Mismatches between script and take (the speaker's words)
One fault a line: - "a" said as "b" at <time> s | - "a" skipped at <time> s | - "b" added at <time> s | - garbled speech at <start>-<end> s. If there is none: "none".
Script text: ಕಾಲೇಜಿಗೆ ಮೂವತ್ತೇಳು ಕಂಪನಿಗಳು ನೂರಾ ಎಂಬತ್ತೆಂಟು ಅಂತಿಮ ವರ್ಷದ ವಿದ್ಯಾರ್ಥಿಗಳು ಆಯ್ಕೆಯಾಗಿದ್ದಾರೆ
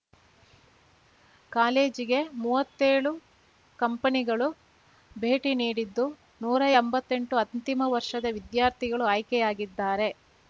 - "ಭೇಟಿ ನೀಡಿದ್ದು" added at 5.2 s